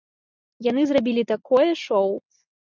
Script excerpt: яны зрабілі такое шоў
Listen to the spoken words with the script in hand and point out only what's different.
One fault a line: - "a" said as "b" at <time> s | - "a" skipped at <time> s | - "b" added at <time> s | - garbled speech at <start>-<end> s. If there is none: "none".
none